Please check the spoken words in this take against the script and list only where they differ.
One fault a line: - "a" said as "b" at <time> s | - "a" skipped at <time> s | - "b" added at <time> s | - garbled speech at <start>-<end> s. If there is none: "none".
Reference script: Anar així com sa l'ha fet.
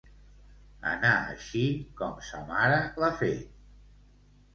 - "mare" added at 2.5 s